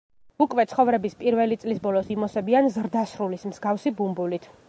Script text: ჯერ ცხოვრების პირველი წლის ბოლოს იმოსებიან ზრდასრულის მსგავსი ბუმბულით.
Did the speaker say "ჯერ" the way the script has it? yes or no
no